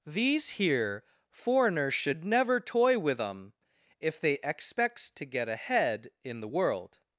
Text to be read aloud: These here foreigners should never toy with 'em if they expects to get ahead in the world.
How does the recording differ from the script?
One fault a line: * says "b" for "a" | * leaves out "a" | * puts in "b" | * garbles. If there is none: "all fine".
all fine